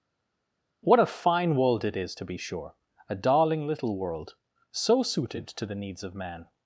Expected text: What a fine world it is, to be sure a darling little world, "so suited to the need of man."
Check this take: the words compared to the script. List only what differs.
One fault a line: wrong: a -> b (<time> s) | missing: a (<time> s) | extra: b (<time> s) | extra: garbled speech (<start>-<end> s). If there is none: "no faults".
wrong: need -> needs (5.8 s)